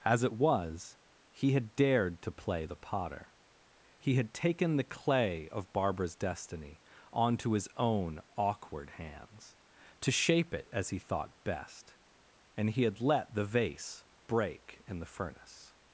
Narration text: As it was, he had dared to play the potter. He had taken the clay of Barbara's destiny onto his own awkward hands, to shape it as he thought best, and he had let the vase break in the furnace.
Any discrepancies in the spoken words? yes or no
no